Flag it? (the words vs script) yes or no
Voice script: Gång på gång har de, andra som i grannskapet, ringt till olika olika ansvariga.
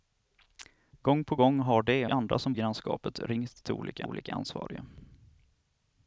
no